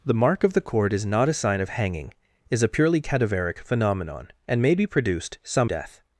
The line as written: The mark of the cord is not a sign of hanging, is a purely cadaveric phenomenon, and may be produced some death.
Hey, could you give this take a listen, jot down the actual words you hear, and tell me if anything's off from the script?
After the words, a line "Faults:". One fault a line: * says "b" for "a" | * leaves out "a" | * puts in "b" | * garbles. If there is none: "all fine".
The mark of the cord is not a sign of hanging, is a purely cadaveric phenomenon, and may be produced some death.
Faults:
all fine